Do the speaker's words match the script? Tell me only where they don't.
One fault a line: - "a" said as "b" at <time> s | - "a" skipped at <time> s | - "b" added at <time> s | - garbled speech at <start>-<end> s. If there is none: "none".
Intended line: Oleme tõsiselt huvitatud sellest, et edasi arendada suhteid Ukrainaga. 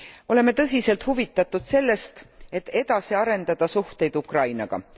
none